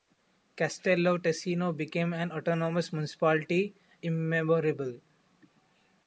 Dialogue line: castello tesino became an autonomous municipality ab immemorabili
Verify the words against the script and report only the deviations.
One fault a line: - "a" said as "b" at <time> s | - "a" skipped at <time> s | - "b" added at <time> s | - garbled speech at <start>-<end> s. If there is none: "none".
- "ab" skipped at 3.7 s